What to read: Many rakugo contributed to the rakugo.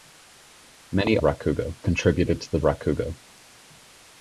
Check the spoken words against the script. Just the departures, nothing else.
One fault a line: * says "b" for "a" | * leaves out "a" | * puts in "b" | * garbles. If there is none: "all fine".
all fine